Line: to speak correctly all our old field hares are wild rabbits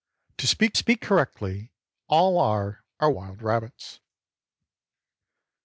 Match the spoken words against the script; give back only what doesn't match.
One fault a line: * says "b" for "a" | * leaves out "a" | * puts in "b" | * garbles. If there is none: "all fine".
* puts in "speak"
* leaves out "old field hares"